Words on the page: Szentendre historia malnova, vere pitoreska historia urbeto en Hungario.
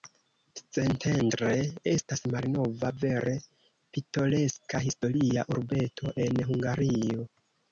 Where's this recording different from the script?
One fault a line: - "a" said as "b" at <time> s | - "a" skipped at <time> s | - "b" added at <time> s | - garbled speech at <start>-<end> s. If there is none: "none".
- "historia" said as "estas" at 1.9 s